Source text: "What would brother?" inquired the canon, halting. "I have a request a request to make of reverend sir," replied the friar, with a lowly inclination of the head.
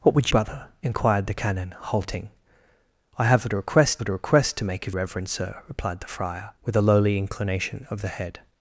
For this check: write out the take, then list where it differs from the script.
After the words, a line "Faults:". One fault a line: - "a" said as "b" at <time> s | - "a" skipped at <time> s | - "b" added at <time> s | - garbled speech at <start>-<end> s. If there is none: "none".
"What would brother?" inquired the canon, halting. "I have a request a request to make of reverend sir," replied the friar, with a lowly inclination of the head.
Faults:
none